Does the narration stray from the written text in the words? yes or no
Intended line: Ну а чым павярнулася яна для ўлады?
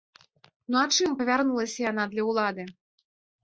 no